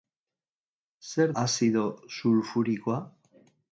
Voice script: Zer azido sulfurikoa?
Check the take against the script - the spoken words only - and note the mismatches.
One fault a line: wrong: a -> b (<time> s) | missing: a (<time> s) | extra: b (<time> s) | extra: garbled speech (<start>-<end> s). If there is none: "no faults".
no faults